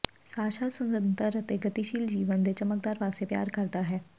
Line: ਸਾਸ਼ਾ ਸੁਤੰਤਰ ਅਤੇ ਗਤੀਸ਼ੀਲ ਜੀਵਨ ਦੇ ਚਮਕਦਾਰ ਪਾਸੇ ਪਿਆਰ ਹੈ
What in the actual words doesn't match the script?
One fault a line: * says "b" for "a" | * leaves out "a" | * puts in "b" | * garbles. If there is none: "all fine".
* puts in "ਕਰਦਾ"